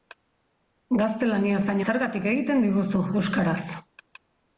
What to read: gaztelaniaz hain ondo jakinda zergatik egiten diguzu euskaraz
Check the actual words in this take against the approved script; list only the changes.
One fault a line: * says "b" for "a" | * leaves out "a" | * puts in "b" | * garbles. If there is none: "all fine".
* leaves out "ondo jakinda"